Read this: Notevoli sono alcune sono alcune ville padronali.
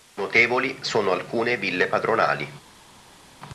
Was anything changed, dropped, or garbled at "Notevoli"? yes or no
no